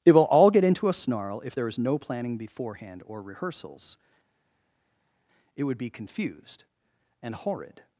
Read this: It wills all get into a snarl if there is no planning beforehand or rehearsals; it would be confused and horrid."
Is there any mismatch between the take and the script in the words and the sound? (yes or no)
yes